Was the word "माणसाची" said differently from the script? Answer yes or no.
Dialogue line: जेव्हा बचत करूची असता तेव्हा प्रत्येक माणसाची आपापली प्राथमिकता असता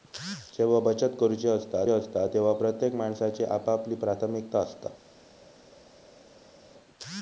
no